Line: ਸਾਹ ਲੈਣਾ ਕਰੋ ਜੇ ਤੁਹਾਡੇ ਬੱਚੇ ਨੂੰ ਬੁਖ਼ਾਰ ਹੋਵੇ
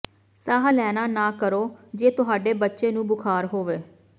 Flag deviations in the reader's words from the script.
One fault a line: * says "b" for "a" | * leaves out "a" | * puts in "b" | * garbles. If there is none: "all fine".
* puts in "ਨਾ"